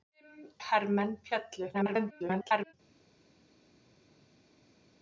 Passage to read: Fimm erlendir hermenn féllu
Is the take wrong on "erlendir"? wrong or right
wrong